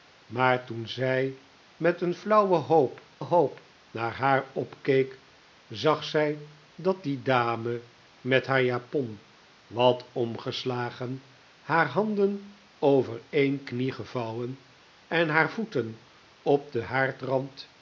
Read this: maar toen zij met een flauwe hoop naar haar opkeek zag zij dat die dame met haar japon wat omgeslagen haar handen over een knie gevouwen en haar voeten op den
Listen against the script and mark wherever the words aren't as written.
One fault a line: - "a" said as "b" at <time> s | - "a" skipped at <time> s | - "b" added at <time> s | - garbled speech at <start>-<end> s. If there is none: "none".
- "hoop" added at 3.2 s